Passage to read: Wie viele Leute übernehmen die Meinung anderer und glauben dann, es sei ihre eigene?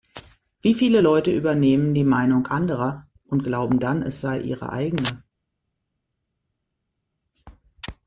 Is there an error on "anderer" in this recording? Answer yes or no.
no